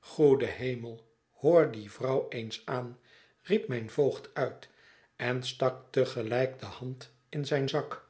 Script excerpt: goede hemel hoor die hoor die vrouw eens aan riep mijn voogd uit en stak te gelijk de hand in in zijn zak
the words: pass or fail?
fail